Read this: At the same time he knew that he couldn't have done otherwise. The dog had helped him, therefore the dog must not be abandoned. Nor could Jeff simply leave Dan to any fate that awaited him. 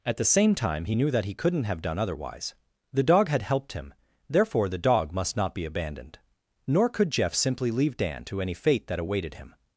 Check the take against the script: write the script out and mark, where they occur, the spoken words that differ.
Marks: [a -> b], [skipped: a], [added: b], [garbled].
At the same time he knew that he couldn't have done otherwise. The dog had helped him, therefore the dog must not be abandoned. Nor could Jeff simply leave Dan to any fate that awaited him.